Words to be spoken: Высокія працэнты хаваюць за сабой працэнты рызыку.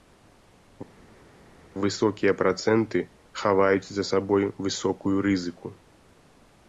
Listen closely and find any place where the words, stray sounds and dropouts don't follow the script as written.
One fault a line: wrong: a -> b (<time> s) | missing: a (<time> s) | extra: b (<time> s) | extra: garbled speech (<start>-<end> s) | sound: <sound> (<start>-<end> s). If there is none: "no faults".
wrong: працэнты -> высокую (4.7 s)